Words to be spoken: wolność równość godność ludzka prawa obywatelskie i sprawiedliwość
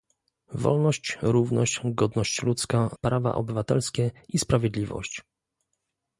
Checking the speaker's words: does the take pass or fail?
pass